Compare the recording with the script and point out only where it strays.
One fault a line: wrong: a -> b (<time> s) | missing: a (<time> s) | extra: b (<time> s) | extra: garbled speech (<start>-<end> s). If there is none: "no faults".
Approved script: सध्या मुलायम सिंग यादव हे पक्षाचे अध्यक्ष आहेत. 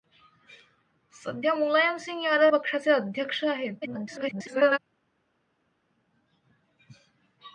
missing: हे (2.5 s)
extra: garbled speech (3.8-4.8 s)